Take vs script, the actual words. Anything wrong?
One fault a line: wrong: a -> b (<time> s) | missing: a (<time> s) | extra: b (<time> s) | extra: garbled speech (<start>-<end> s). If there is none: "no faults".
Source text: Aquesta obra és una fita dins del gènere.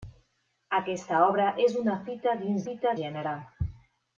wrong: del -> fita (2.7 s)